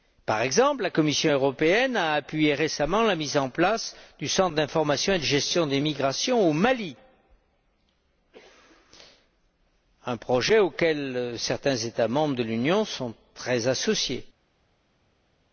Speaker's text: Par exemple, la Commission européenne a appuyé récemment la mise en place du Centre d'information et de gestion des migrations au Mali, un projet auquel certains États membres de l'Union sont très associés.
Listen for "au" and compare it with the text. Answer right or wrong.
right